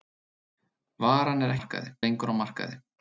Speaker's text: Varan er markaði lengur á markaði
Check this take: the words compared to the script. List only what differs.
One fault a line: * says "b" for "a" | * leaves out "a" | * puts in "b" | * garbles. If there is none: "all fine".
all fine